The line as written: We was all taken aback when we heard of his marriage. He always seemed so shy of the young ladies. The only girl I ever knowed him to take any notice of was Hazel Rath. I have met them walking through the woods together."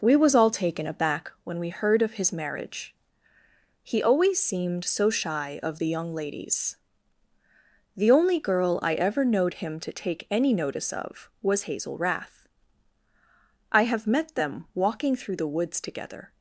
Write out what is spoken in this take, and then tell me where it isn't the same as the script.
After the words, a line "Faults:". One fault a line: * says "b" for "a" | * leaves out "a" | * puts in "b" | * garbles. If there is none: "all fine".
We was all taken aback when we heard of his marriage. He always seemed so shy of the young ladies. The only girl I ever knowed him to take any notice of was Hazel Rath. I have met them walking through the woods together."
Faults:
all fine